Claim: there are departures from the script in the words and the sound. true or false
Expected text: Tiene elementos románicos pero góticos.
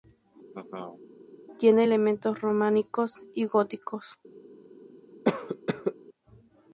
true